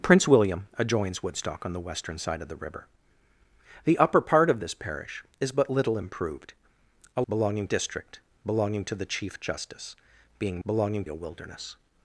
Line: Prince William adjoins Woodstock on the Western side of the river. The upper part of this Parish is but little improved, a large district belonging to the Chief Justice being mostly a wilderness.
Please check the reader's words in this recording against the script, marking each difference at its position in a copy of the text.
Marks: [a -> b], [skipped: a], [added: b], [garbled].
Prince William adjoins Woodstock on the Western side of the river. The upper part of this Parish is but little improved, a [large -> belonging] district belonging to the Chief Justice being [mostly -> belonging] a wilderness.